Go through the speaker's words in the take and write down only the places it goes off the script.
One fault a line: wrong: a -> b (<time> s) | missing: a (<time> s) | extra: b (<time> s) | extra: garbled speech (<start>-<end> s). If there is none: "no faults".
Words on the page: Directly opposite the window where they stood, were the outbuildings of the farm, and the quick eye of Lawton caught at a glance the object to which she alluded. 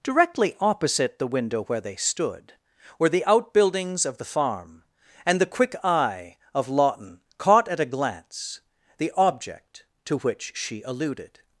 no faults